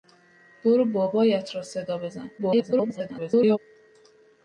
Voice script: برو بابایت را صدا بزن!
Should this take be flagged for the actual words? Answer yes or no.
yes